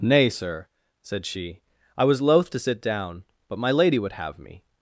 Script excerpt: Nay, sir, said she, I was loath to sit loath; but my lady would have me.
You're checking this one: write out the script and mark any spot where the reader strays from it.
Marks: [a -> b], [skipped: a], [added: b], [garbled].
Nay, sir, said she, I was loath to sit [loath; -> down] but my lady would have me.